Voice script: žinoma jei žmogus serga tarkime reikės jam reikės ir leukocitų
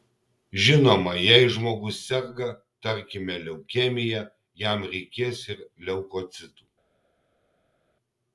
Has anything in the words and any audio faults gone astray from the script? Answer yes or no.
yes